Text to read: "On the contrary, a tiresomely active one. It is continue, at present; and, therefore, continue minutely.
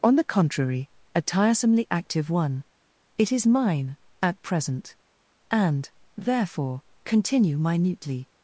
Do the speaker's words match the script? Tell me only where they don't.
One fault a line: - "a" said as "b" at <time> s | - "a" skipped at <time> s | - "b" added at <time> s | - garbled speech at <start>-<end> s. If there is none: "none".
- "continue" said as "mine" at 3.5 s